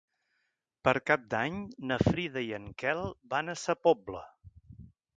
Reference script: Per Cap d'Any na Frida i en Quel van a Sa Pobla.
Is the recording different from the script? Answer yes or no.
no